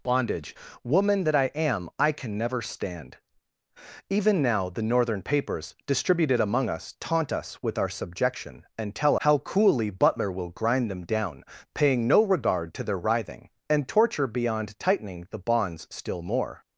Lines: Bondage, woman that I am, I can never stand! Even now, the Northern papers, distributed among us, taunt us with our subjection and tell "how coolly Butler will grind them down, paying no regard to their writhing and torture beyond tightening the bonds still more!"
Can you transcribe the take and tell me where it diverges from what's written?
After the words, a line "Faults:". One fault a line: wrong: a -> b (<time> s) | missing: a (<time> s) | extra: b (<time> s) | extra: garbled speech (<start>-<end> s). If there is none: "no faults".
Bondage, woman that I am, I can never stand! Even now, the Northern papers, distributed among us, taunt us with our subjection and tell "how coolly Butler will grind them down, paying no regard to their writhing and torture beyond tightening the bonds still more!"
Faults:
no faults